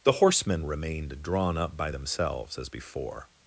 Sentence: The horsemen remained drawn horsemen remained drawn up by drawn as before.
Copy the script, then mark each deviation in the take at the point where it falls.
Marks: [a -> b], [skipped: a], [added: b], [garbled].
The horsemen remained drawn [skipped: horsemen remained drawn] up by [drawn -> themselves] as before.